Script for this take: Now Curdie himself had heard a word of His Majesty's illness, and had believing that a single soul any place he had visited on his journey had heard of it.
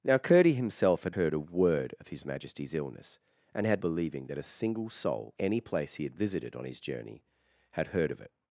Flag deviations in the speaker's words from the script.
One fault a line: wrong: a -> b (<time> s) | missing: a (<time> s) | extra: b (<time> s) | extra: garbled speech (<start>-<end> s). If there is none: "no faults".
no faults